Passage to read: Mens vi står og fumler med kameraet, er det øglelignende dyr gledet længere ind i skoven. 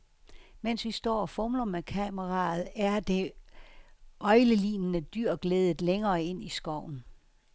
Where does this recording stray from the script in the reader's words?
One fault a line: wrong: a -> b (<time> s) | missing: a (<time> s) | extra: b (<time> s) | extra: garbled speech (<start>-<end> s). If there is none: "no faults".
no faults